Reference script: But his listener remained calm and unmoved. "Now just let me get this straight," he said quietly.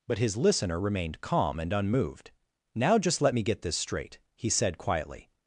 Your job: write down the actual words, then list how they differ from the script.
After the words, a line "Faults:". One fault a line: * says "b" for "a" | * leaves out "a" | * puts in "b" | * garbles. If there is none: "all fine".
But his listener remained calm and unmoved. "Now just let me get this straight," he said quietly.
Faults:
all fine